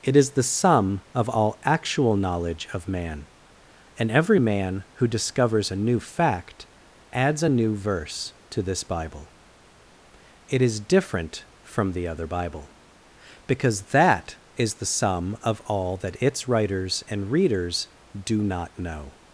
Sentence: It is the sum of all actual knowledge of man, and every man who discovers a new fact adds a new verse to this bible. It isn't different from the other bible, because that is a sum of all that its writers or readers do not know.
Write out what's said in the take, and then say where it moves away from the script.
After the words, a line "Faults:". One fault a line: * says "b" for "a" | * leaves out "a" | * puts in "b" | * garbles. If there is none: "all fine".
It is the sum of all actual knowledge of man, and every man who discovers a new fact adds a new verse to this bible. It is different from the other bible, because that is the sum of all that its writers and readers do not know.
Faults:
* says "is" for "isn't"
* says "the" for "a"
* says "and" for "or"